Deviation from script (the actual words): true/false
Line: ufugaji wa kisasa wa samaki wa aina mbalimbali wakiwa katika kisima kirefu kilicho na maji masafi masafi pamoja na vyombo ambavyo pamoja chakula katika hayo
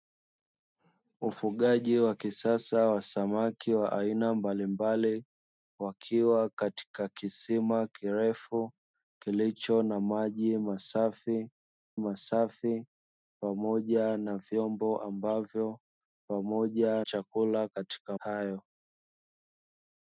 false